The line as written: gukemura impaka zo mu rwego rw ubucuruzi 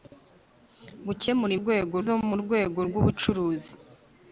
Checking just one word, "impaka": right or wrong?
wrong